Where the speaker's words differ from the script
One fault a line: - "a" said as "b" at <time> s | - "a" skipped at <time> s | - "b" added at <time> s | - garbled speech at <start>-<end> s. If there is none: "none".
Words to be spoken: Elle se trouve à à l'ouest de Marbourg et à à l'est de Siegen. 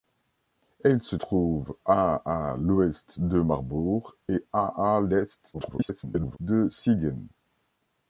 - garbled speech at 5.5-6.4 s